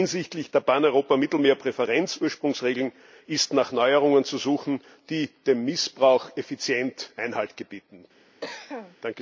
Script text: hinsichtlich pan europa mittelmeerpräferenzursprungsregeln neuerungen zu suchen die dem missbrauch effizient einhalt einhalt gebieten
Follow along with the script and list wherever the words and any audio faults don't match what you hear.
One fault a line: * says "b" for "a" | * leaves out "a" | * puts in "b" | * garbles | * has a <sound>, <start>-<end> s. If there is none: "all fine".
* puts in "der"
* puts in "ist nach"
* leaves out "einhalt"
* has a cough, 8.4-9.0 s